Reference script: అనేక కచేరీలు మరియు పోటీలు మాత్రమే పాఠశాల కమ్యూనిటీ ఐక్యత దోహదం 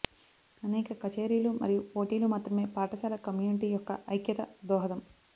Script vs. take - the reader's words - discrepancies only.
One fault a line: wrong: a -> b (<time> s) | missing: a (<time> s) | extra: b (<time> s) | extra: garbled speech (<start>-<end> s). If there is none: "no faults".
extra: యొక్క (3.7 s)